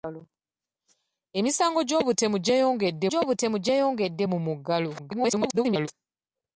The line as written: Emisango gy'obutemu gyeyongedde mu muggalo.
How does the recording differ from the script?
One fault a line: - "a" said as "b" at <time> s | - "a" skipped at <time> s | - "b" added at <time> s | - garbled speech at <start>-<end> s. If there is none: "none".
- "gy'obutemu gyeyongedde" added at 3.1 s
- garbled speech at 5.0-5.9 s